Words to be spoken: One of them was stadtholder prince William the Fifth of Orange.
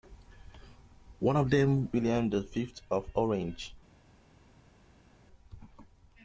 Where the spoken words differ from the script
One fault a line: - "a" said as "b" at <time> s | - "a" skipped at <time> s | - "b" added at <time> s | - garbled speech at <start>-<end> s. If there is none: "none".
- "was stadtholder prince" skipped at 1.9 s